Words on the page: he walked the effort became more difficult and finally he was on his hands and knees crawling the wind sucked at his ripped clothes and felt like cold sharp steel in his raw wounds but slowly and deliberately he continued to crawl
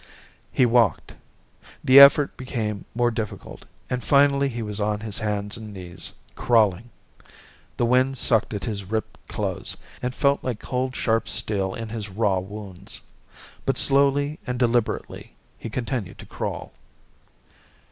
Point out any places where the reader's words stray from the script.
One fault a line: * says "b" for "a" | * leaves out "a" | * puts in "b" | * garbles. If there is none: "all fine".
all fine